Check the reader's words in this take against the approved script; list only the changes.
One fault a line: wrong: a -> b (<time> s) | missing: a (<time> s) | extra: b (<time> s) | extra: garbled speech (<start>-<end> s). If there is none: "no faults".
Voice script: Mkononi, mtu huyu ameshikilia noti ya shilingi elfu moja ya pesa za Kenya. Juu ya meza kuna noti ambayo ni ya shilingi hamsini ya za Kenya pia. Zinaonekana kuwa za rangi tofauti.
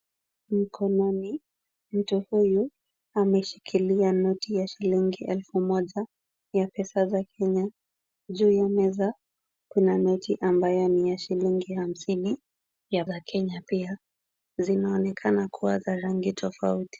no faults